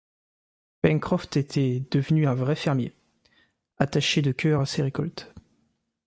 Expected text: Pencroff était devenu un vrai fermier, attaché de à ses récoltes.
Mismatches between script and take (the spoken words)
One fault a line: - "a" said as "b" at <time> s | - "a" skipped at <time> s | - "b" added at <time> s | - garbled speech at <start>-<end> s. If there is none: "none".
- "cœur" added at 4.3 s